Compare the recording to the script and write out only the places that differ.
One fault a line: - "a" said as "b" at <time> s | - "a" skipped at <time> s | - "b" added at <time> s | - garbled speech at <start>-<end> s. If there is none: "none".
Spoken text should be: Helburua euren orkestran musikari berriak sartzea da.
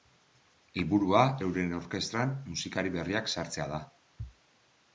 none